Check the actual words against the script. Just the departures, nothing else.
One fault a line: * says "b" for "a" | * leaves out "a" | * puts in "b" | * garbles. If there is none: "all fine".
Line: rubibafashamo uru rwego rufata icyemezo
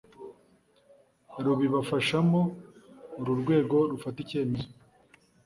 all fine